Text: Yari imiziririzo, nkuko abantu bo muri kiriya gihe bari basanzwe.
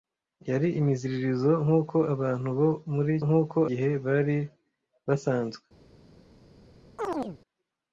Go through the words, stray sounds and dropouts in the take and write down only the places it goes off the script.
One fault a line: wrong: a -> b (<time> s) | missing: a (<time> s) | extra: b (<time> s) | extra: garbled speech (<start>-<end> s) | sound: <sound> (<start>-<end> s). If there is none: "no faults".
wrong: kiriya -> nkuko (3.2 s)
sound: chirp (7.0-7.4 s)